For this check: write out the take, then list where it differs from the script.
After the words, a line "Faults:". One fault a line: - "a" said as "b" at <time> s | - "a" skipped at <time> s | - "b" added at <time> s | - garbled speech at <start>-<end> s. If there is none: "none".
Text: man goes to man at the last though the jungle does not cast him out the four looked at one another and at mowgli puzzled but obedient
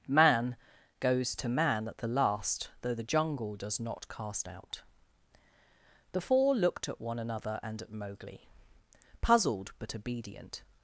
man goes to man at the last though the jungle does not cast out the four looked at one another and at mowgli puzzled but obedient
Faults:
- "him" skipped at 4.5 s